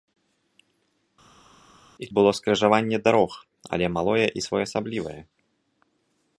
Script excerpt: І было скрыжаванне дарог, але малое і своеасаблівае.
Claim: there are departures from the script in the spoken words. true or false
false